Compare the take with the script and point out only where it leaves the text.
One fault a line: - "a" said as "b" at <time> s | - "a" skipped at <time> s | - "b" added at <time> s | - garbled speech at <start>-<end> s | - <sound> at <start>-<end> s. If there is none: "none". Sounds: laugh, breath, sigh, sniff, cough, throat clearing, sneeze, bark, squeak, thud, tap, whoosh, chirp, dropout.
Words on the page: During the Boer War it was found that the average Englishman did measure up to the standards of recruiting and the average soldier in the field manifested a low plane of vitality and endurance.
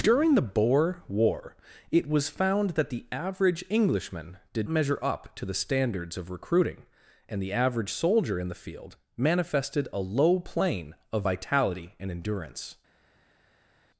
none